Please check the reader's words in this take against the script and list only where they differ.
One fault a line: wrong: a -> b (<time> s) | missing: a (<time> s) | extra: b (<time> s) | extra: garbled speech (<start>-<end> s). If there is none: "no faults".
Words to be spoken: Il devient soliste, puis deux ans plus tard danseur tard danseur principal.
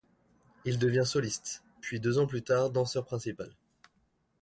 missing: tard danseur (3.0 s)